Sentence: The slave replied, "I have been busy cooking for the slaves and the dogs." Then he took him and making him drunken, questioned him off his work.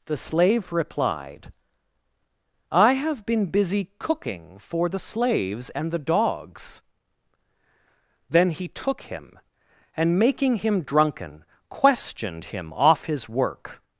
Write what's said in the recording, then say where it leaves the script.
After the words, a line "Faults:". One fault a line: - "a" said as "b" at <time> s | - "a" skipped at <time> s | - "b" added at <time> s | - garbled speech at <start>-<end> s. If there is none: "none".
The slave replied, "I have been busy cooking for the slaves and the dogs." Then he took him and making him drunken, questioned him off his work.
Faults:
none